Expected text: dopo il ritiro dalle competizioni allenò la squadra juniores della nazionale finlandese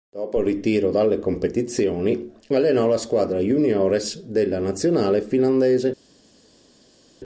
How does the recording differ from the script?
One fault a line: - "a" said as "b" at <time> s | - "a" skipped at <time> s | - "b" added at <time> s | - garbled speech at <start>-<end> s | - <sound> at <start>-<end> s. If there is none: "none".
none